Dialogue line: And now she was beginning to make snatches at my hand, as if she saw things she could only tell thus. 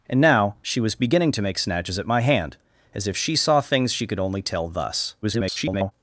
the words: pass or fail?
fail